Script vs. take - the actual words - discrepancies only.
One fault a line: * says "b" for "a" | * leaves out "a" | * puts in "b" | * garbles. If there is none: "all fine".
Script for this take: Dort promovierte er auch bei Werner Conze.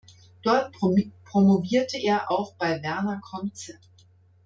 all fine